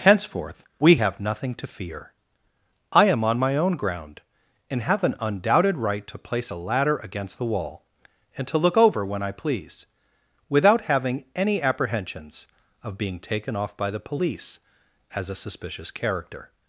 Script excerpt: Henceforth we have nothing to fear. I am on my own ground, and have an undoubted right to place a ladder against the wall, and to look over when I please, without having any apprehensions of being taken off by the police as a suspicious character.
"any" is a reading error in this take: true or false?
false